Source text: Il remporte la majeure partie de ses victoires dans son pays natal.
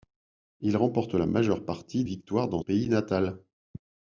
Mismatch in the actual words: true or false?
true